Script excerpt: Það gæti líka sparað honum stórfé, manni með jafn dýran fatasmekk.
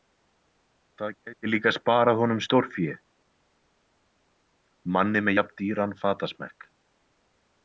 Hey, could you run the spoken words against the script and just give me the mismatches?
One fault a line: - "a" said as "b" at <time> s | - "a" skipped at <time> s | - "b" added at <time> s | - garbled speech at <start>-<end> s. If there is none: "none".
none